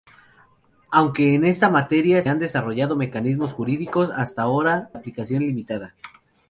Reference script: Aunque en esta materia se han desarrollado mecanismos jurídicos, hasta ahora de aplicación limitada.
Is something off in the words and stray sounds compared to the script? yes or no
yes